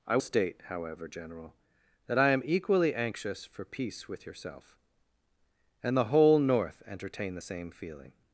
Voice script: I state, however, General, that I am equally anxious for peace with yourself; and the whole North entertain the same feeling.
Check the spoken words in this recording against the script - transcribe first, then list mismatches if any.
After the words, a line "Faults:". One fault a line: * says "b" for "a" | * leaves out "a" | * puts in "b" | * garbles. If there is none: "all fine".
I state, however, General, that I am equally anxious for peace with yourself; and the whole North entertain the same feeling.
Faults:
all fine